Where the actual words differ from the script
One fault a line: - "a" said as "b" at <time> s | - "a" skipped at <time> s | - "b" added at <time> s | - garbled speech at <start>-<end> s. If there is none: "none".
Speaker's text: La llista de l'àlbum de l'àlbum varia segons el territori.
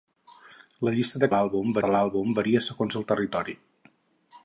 none